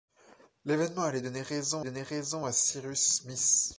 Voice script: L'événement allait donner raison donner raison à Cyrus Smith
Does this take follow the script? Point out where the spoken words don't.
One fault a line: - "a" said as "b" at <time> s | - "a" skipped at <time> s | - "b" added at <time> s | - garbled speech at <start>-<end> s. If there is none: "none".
none